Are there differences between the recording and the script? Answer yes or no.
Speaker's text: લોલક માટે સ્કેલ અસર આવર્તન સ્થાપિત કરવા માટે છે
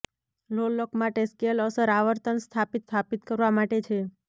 yes